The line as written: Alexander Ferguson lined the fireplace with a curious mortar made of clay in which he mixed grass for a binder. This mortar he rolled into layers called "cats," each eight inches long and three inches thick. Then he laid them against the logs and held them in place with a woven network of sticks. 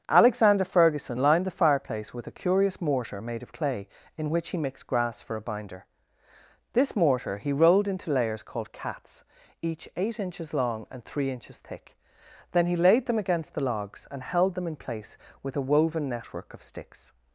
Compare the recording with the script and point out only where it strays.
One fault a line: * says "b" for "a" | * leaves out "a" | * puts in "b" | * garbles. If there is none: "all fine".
all fine